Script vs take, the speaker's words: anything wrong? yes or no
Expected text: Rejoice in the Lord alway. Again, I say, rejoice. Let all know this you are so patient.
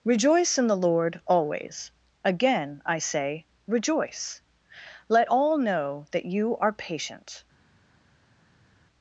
yes